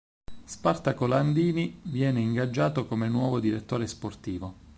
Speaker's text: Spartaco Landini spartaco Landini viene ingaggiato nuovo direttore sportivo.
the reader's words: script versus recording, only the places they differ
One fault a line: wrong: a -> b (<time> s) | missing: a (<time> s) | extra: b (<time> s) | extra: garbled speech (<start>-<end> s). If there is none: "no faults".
missing: spartaco Landini (1.8 s)
extra: come (2.9 s)